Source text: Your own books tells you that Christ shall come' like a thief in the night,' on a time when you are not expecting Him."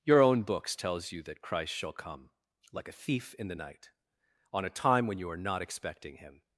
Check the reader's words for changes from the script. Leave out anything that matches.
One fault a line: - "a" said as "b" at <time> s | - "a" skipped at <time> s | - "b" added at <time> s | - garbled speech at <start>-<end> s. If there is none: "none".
none